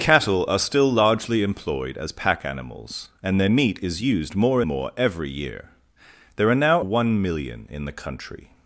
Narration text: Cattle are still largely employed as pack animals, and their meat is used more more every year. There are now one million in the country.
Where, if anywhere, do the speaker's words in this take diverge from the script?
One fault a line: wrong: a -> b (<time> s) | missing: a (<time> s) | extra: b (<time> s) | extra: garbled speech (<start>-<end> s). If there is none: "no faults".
no faults